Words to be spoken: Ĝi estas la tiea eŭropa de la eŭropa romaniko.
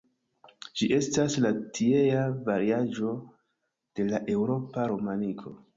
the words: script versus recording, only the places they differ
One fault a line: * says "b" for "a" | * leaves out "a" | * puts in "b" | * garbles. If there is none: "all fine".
* says "variaĵo" for "eŭropa"